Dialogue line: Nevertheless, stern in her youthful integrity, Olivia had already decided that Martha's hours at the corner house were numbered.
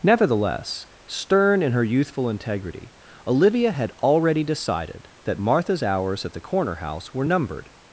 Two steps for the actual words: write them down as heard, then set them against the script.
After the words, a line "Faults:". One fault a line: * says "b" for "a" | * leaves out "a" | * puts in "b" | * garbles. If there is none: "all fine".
Nevertheless, stern in her youthful integrity, Olivia had already decided that Martha's hours at the corner house were numbered.
Faults:
all fine